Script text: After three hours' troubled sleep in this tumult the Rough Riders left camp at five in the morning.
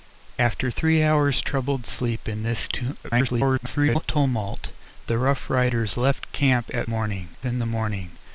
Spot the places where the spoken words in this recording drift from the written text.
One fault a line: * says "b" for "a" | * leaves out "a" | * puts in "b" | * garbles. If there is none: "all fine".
* garbles
* says "morning" for "five"